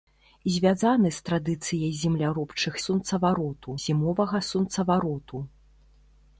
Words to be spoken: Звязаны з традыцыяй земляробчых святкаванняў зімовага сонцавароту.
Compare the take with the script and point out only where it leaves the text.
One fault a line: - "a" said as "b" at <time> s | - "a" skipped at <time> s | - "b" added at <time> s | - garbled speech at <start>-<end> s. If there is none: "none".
- "святкаванняў" said as "сонцавароту" at 2.8 s